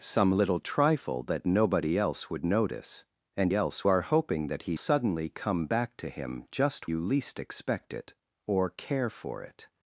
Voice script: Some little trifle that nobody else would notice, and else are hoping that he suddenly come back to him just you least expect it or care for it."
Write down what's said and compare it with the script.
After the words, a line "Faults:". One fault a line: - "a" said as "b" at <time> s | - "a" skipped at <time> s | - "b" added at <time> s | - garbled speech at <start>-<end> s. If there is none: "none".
Some little trifle that nobody else would notice, and else are hoping that he suddenly come back to him just you least expect it or care for it."
Faults:
none